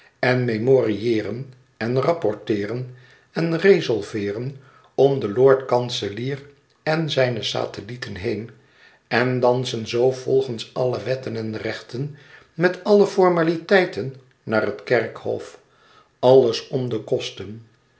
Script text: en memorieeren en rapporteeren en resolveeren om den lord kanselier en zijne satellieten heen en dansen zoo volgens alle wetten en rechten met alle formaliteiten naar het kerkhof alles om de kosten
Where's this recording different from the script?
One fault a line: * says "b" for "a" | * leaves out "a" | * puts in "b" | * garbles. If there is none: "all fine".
all fine